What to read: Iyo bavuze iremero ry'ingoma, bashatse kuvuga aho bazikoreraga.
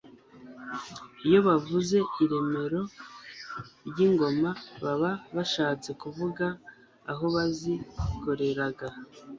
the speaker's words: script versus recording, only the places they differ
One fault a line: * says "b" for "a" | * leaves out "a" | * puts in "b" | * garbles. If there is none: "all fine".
* puts in "baba"